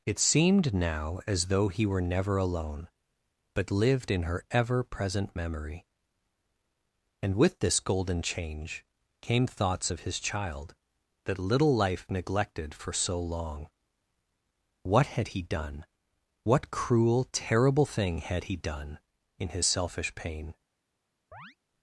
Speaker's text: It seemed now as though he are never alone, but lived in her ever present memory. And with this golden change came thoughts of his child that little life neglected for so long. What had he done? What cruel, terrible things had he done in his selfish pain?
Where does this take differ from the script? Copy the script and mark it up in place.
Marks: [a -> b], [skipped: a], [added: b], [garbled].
It seemed now as though he [are -> were] never alone, but lived in her ever present memory. And with this golden change came thoughts of his child that little life neglected for so long. What had he done? What cruel, terrible [things -> thing] had he done in his selfish pain?